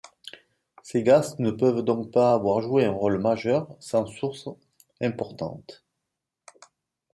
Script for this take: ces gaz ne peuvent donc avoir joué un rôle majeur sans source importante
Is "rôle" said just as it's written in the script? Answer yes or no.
yes